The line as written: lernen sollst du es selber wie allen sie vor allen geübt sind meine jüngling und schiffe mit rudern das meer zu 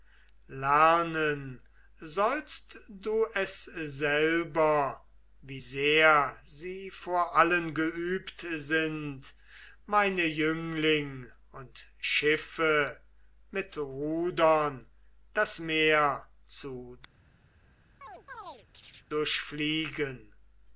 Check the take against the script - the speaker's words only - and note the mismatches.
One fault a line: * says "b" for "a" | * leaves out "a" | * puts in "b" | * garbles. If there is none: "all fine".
* says "sehr" for "allen"